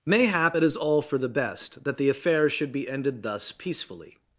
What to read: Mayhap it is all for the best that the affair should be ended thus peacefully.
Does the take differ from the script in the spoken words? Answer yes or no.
no